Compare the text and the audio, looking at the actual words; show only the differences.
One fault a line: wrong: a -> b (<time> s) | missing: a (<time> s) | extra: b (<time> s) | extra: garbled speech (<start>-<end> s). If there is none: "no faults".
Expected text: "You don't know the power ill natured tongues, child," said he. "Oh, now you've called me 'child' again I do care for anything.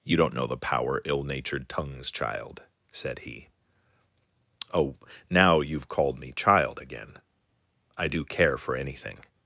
no faults